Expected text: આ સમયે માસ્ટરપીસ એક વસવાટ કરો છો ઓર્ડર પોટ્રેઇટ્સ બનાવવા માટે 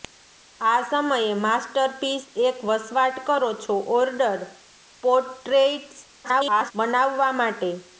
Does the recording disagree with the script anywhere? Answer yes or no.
yes